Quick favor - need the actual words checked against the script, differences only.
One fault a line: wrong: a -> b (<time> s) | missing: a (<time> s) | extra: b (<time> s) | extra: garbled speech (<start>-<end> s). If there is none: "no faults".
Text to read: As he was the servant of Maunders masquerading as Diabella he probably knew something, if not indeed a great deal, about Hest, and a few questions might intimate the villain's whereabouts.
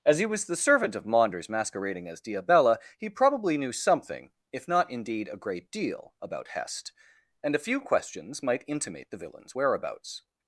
no faults